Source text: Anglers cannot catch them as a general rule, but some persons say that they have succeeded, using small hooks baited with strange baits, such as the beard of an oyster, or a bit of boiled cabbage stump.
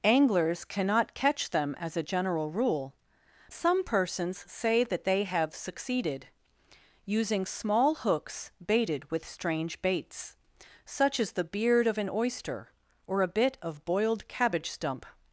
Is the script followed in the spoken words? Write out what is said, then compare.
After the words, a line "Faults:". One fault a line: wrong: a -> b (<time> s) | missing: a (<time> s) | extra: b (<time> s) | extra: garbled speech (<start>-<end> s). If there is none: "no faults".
Anglers cannot catch them as a general rule, some persons say that they have succeeded, using small hooks baited with strange baits, such as the beard of an oyster, or a bit of boiled cabbage stump.
Faults:
missing: but (3.0 s)